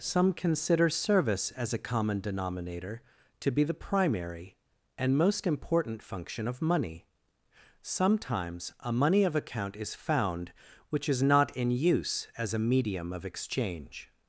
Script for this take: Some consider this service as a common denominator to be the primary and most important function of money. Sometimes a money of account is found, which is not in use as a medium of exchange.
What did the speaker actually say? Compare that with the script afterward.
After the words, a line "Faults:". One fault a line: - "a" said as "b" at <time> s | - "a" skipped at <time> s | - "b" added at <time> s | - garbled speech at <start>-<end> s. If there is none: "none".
Some consider service as a common denominator to be the primary and most important function of money. Sometimes a money of account is found, which is not in use as a medium of exchange.
Faults:
- "this" skipped at 0.9 s